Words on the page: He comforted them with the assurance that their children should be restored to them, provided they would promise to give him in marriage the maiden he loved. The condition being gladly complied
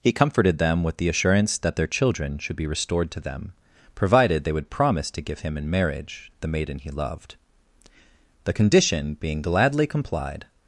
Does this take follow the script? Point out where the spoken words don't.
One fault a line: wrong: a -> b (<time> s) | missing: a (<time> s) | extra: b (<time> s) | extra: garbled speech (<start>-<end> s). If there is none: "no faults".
no faults